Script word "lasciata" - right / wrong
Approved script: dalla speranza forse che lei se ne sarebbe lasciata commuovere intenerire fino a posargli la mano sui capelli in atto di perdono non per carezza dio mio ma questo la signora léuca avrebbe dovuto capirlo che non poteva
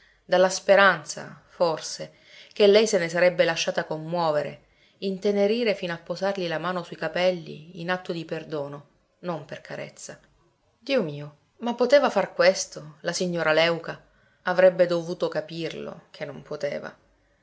right